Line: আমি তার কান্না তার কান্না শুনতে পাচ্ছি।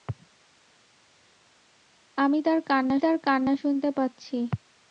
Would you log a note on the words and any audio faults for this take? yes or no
no